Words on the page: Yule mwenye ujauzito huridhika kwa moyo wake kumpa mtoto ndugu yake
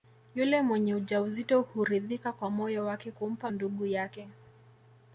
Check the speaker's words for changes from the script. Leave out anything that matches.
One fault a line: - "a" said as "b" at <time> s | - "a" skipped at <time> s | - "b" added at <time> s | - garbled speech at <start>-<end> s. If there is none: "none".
- "mtoto" skipped at 3.5 s